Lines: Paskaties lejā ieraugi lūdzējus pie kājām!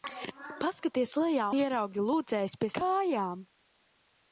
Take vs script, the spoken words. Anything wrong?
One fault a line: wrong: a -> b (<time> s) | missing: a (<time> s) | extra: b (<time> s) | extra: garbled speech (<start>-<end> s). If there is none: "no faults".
no faults